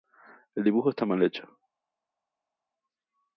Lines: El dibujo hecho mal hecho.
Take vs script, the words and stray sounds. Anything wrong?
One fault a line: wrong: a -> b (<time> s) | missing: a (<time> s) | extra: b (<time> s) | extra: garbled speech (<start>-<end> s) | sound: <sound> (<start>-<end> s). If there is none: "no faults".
wrong: hecho -> está (0.9 s)